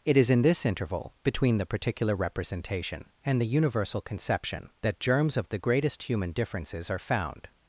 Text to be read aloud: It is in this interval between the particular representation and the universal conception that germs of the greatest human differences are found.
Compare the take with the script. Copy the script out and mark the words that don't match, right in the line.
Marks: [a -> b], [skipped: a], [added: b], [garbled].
It is in this interval between the particular representation and the universal conception that germs of the greatest human differences are found.